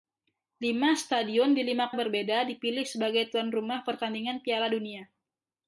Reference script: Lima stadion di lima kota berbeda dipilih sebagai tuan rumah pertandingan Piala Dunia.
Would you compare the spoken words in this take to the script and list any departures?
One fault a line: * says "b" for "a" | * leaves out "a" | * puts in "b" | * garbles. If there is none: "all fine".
* leaves out "kota"